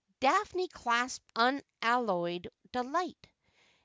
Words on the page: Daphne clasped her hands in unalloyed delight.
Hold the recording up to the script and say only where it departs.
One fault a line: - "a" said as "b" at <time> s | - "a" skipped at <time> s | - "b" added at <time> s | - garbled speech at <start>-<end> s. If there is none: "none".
- "her hands in" skipped at 1.3 s